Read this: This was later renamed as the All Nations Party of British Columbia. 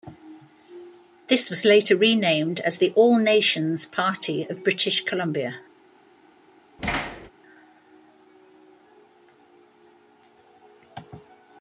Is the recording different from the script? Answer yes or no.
no